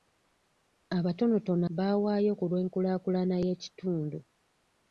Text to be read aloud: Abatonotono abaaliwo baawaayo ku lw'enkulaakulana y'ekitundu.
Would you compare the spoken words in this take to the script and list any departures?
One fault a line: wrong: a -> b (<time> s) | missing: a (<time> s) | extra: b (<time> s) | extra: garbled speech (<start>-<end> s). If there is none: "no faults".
missing: abaaliwo (1.6 s)